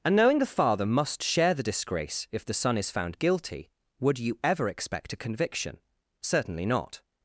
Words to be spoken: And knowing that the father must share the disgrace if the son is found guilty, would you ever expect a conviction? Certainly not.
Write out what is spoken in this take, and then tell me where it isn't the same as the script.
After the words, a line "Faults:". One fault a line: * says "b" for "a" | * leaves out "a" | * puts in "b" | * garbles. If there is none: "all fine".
And knowing the father must share the disgrace if the son is found guilty, would you ever expect a conviction? Certainly not.
Faults:
* leaves out "that"